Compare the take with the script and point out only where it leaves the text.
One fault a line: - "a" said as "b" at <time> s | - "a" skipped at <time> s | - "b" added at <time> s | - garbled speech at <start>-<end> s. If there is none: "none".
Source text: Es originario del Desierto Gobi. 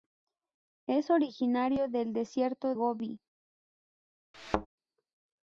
none